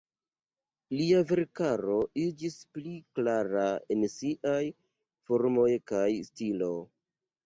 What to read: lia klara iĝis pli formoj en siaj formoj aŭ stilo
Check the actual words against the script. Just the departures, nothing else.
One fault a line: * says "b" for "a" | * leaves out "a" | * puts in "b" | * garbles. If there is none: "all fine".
* says "verkaro" for "klara"
* says "klara" for "formoj"
* says "kaj" for "aŭ"